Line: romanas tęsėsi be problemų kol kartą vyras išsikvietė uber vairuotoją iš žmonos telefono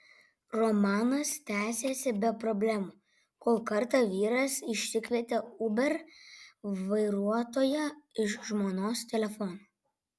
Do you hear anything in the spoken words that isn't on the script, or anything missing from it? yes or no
no